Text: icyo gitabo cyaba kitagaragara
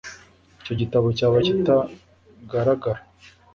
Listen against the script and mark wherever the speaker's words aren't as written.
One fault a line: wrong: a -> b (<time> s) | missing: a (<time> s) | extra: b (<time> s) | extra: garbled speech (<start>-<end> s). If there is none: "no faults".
no faults